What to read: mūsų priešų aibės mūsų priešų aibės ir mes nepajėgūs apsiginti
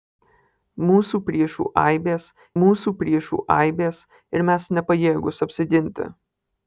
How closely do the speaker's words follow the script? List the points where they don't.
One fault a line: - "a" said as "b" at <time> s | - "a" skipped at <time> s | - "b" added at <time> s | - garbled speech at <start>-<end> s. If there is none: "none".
none